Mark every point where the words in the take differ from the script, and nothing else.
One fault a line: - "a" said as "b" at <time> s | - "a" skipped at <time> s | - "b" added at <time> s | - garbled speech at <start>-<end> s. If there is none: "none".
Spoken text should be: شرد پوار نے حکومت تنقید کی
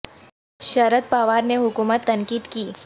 none